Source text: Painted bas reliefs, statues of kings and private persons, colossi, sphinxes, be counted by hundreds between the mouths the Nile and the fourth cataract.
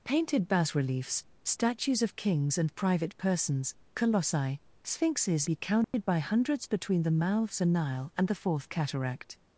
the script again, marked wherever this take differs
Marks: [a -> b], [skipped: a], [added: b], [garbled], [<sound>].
Painted bas reliefs, statues of kings and private persons, colossi, sphinxes, be counted [dropout] by hundreds between the mouths the Nile and the fourth cataract.